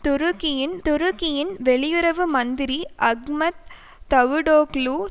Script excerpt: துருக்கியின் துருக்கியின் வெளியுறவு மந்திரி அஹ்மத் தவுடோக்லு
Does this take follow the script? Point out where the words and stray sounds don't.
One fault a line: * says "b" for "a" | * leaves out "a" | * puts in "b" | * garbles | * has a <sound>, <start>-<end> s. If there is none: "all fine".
all fine